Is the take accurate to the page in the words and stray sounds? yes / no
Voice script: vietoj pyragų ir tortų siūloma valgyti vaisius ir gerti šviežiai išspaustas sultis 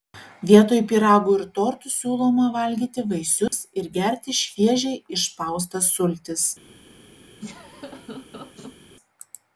no